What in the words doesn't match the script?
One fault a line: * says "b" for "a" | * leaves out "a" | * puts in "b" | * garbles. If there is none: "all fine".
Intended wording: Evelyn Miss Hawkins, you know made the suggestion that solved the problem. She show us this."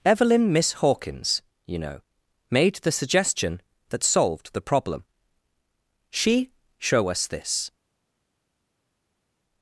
all fine